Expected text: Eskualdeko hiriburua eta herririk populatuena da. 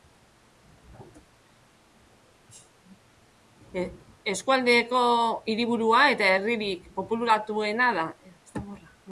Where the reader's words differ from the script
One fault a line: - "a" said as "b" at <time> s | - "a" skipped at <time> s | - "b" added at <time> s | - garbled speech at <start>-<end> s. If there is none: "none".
none